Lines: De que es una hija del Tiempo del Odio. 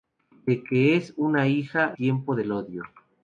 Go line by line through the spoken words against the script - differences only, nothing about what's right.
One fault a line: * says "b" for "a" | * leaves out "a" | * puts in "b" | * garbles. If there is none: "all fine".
* leaves out "del"